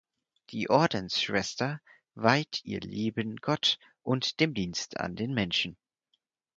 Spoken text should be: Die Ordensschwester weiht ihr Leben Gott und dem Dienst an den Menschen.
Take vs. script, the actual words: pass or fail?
pass